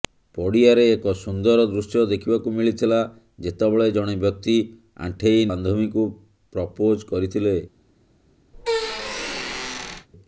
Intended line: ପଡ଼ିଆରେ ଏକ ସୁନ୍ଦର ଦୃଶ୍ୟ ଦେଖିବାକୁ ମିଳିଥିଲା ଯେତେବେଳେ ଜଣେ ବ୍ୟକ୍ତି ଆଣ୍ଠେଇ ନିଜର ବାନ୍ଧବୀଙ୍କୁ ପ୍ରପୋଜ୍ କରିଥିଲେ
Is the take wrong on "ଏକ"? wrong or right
right